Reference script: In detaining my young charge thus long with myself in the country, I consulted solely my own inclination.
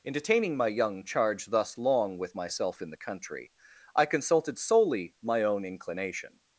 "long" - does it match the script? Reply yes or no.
yes